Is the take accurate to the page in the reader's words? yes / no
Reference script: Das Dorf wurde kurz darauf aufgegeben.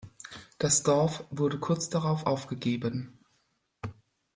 yes